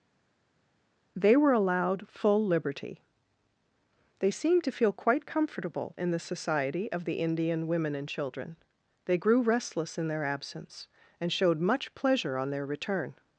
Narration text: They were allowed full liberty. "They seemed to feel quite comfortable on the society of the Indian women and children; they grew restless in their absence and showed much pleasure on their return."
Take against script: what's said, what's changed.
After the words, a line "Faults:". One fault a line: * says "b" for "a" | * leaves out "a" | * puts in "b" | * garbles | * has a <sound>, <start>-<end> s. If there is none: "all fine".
They were allowed full liberty. "They seemed to feel quite comfortable in the society of the Indian women and children; they grew restless in their absence and showed much pleasure on their return."
Faults:
* says "in" for "on"